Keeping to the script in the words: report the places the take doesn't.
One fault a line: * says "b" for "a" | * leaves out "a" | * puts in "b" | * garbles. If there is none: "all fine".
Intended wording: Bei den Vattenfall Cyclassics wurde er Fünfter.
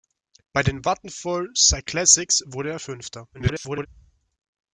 * garbles